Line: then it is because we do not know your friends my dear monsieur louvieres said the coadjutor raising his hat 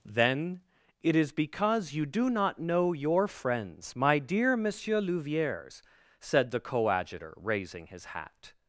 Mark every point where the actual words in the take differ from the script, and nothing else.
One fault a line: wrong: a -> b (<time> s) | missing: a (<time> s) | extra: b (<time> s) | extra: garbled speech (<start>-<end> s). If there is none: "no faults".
wrong: we -> you (1.9 s)